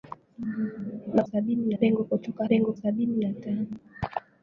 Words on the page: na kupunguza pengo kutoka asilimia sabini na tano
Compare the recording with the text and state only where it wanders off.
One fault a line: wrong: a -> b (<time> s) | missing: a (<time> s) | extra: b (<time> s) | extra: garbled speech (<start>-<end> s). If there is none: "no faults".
wrong: kupunguza -> sabini (1.2 s)
wrong: asilimia -> pengo (2.4 s)